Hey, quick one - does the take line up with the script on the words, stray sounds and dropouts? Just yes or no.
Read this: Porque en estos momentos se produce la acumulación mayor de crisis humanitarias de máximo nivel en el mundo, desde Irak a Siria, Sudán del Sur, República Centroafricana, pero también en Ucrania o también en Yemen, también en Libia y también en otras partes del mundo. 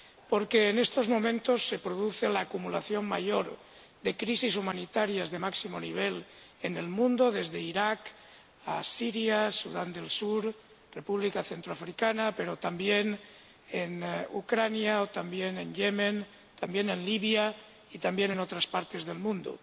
yes